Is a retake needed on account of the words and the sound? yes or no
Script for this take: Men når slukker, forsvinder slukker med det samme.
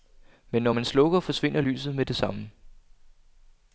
yes